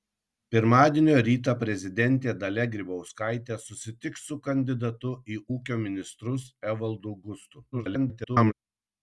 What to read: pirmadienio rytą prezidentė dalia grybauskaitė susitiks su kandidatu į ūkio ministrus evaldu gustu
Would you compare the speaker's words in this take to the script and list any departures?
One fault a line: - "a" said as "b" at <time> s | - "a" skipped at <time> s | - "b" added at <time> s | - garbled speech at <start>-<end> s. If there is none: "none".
- garbled speech at 7.7-8.5 s